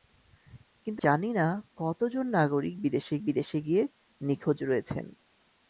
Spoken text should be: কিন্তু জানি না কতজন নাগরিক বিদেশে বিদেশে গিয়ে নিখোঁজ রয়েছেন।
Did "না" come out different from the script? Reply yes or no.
no